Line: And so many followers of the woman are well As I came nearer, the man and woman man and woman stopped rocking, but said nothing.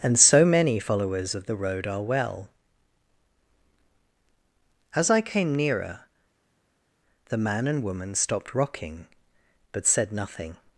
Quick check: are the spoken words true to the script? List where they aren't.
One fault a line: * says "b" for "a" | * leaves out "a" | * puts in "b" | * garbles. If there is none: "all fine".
* says "road" for "woman"
* leaves out "man and woman"